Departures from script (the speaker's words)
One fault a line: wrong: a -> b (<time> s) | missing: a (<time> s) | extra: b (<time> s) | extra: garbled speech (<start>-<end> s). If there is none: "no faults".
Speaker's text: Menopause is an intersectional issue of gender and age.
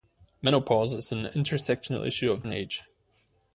missing: gender (2.5 s)